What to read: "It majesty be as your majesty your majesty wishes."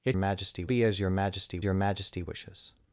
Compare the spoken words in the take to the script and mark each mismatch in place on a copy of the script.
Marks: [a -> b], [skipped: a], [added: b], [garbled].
"It majesty be as your majesty your majesty wishes."